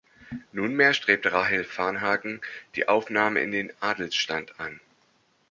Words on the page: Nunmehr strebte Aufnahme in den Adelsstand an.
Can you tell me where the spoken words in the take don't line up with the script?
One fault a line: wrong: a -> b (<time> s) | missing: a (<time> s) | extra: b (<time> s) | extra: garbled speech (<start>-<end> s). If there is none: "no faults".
extra: Rahel Varnhagen die (1.3 s)